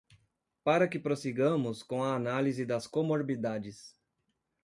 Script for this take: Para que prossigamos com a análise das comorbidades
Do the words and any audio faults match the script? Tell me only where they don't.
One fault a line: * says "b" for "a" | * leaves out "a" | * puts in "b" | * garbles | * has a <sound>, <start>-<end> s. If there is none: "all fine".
all fine